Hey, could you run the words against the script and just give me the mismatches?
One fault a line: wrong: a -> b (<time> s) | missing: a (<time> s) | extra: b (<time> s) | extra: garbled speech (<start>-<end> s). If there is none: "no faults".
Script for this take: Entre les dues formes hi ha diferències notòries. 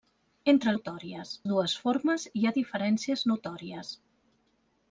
wrong: les -> notòries (0.8 s)